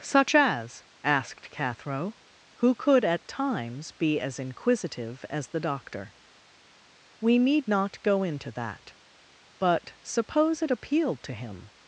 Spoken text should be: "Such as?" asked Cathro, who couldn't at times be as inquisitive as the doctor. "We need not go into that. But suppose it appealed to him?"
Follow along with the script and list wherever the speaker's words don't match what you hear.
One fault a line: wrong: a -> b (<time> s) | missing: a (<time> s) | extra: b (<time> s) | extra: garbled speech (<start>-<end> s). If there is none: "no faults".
wrong: couldn't -> could (2.7 s)